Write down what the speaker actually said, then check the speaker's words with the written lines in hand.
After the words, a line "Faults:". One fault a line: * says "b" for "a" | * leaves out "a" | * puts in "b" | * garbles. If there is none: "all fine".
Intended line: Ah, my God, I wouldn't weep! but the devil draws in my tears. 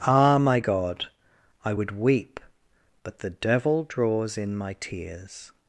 Ah, my God, I would weep! but the devil draws in my tears.
Faults:
* says "would" for "wouldn't"